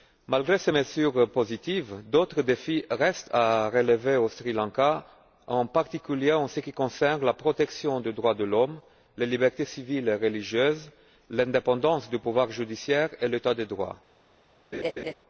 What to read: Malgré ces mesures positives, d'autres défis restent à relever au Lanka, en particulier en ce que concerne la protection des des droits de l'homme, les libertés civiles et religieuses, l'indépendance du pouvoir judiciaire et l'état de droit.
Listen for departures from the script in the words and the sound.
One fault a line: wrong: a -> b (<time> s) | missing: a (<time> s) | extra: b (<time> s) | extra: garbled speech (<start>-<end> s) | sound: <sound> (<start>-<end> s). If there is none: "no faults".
extra: Sri (4.3 s)
wrong: que -> qui (6.6 s)
missing: des (8.1 s)
sound: laugh (14.7-15.1 s)